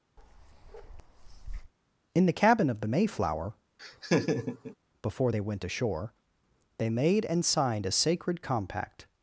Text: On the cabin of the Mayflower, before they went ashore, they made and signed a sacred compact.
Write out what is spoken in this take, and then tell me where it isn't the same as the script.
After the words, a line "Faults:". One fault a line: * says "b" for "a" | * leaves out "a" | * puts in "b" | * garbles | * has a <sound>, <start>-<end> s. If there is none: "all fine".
In the cabin of the Mayflower, before they went ashore, they made and signed a sacred compact.
Faults:
* has a bark, 0.2-1.7 s
* says "In" for "On"
* has a laugh, 3.8-4.8 s